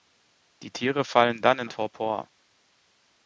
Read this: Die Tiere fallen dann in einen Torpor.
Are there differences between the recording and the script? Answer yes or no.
yes